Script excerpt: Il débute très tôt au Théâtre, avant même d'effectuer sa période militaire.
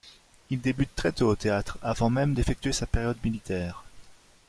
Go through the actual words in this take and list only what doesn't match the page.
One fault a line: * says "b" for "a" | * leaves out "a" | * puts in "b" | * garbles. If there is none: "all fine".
all fine